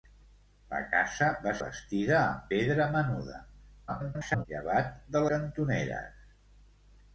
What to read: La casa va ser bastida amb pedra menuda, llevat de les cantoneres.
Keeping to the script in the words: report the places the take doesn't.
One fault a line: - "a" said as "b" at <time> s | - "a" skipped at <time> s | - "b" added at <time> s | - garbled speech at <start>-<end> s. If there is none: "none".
- "ser" skipped at 1.5 s
- garbled speech at 3.9-4.5 s
- "les" skipped at 5.2 s